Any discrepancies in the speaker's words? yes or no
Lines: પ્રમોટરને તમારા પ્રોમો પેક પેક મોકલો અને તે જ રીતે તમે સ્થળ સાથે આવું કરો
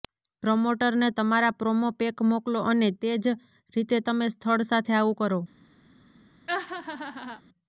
yes